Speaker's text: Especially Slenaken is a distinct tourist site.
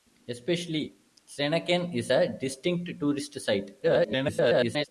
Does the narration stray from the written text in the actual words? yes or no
yes